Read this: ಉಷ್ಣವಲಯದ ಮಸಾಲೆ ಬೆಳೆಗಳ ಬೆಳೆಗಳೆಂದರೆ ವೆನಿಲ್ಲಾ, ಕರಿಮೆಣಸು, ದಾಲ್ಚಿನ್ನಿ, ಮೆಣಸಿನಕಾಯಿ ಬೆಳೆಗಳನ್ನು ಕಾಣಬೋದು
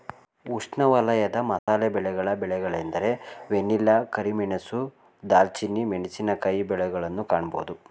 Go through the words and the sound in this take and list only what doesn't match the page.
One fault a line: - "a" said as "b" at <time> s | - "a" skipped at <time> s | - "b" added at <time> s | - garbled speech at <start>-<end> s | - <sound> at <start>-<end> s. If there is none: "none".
- dropout at 1.6-1.7 s